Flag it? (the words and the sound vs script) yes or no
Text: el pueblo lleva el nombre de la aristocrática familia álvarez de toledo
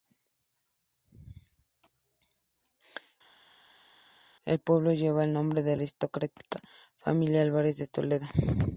yes